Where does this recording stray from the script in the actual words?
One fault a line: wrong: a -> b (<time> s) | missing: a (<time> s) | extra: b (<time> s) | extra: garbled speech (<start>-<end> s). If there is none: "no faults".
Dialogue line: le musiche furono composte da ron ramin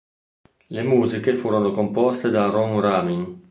no faults